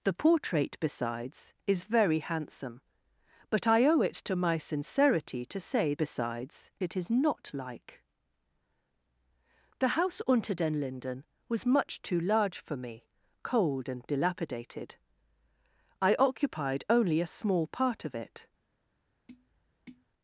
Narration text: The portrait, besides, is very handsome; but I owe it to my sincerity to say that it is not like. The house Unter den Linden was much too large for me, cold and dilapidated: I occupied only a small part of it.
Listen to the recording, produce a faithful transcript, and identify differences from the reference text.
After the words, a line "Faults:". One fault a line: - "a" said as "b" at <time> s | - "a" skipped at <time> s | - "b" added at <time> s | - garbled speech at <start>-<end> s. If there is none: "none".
The portrait, besides, is very handsome; but I owe it to my sincerity to say besides it is not like. The house Unter den Linden was much too large for me, cold and dilapidated: I occupied only a small part of it.
Faults:
- "that" said as "besides" at 6.0 s